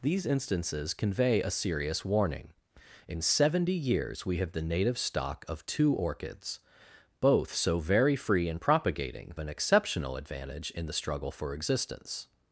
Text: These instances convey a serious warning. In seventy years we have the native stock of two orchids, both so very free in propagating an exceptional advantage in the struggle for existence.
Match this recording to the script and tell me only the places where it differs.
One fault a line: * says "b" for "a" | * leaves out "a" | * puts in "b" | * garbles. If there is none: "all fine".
all fine